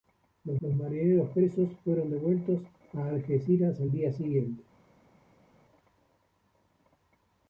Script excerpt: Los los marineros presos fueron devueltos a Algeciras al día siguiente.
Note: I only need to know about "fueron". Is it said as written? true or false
true